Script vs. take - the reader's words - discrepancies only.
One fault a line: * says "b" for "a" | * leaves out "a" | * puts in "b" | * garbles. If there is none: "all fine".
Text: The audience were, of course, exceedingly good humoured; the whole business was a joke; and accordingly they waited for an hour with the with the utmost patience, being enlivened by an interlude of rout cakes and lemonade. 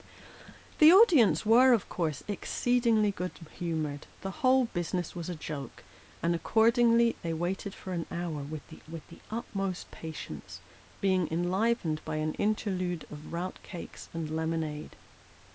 all fine